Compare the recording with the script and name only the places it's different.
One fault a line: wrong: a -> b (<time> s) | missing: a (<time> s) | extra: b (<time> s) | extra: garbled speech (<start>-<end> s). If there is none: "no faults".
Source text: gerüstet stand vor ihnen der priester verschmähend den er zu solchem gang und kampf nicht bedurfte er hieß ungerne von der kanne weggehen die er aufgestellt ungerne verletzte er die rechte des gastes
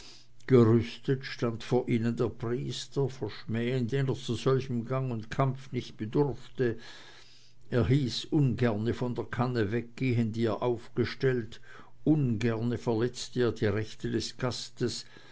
no faults